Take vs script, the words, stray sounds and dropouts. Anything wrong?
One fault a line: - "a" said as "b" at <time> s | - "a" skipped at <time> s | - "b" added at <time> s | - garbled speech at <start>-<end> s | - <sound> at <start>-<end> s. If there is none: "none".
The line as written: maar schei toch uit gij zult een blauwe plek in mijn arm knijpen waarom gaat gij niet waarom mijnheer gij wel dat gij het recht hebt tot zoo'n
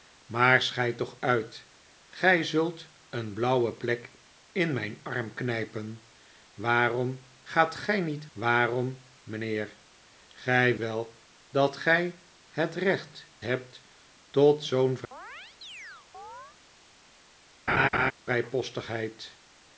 - chirp at 15.1-16.6 s
- laugh at 17.7-18.1 s